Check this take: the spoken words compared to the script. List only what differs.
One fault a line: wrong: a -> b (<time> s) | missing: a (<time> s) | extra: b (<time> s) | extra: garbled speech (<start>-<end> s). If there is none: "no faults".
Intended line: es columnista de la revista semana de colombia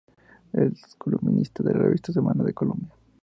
no faults